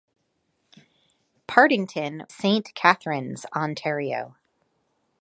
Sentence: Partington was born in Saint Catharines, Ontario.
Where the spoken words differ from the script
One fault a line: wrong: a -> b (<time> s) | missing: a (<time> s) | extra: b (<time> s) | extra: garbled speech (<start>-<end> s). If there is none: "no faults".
missing: was born in (2.2 s)